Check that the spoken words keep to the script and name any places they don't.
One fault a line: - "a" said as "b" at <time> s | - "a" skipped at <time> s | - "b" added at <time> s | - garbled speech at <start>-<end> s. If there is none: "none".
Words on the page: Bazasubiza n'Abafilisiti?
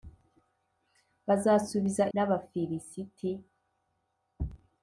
none